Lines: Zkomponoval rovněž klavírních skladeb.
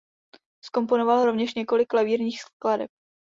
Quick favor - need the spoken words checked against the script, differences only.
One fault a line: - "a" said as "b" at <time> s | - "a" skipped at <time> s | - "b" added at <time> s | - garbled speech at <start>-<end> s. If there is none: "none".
- "několik" added at 1.5 s